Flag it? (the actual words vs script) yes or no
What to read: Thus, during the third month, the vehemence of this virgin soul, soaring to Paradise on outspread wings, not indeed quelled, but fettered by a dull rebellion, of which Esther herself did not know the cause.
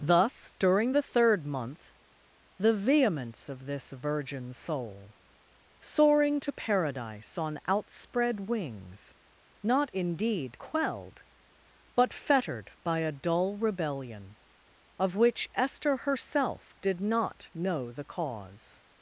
no